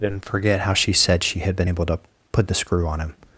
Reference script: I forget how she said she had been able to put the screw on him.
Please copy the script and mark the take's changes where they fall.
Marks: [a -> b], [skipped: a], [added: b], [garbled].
[I -> didn't] forget how she said she had been able to put the screw on him.